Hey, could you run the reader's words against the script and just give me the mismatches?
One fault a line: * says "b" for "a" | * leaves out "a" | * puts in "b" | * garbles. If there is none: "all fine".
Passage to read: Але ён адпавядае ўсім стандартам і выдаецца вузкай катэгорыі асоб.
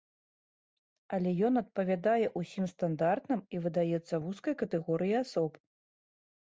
all fine